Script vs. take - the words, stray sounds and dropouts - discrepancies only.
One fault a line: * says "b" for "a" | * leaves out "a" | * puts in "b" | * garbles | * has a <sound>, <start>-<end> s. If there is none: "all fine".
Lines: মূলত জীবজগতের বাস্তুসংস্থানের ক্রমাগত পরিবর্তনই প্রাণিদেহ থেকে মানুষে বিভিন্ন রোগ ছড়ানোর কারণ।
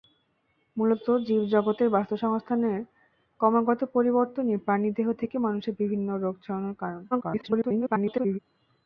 * garbles